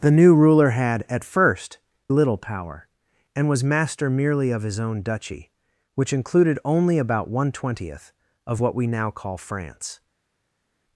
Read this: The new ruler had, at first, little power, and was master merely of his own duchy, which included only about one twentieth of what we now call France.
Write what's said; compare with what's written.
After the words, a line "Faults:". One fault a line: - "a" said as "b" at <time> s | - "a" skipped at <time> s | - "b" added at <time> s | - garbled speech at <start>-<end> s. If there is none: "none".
The new ruler had, at first, little power, and was master merely of his own duchy, which included only about one twentieth of what we now call France.
Faults:
none